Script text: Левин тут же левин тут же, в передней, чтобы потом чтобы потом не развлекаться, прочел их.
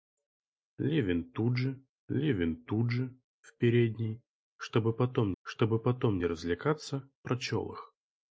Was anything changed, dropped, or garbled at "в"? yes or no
no